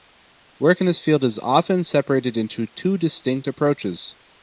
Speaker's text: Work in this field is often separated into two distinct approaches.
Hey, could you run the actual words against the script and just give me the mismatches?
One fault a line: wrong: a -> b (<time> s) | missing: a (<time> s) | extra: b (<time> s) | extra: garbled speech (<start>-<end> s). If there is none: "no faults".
no faults